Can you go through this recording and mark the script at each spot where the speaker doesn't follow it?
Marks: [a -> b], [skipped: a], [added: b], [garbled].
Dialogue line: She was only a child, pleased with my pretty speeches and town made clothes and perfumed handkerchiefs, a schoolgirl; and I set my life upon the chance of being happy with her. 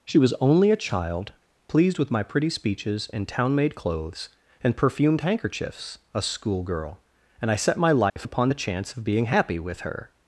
She was only a child, pleased with my pretty speeches and town made clothes and perfumed handkerchiefs, a schoolgirl; and I set my life upon the chance of being happy with her.